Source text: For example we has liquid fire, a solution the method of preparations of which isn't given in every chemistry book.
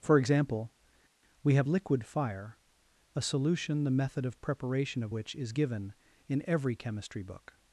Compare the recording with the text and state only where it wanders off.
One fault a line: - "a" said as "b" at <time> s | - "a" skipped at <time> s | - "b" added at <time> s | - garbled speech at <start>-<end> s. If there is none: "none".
- "has" said as "have" at 1.6 s
- "preparations" said as "preparation" at 4.4 s
- "isn't" said as "is" at 5.3 s